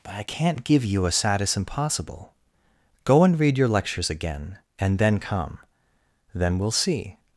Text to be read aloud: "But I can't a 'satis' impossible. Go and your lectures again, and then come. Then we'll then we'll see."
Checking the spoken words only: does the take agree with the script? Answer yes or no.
no